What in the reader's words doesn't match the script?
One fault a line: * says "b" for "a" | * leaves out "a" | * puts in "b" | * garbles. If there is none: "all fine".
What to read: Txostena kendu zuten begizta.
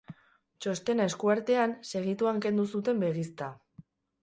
* puts in "esku artean segituan"